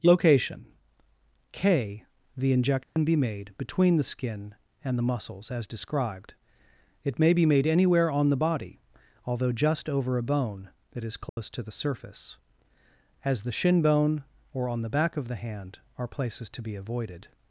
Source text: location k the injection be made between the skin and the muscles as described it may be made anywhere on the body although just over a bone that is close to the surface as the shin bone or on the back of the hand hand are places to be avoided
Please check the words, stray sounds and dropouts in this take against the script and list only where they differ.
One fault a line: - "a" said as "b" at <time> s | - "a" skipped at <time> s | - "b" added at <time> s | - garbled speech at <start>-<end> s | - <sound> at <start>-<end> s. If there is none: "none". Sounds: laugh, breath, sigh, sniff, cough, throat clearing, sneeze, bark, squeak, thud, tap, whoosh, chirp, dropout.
- dropout at 2.8-3.0 s
- dropout at 11.3-11.4 s
- "hand" skipped at 15.8 s